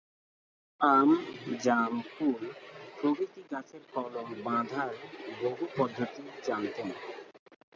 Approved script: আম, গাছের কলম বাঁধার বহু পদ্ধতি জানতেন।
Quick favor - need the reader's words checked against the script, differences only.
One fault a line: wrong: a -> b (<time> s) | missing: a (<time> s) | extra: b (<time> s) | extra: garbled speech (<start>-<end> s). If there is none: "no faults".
extra: জাম কুল প্রভৃতি (1.6 s)